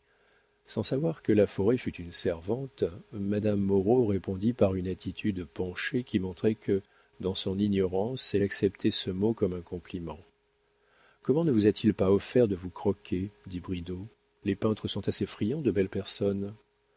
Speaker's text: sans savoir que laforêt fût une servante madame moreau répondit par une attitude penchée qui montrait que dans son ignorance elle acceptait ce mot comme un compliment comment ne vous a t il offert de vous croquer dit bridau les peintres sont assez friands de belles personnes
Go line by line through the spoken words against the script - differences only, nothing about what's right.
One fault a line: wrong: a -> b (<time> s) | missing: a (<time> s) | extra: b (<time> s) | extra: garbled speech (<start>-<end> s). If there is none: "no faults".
extra: pas (11.9 s)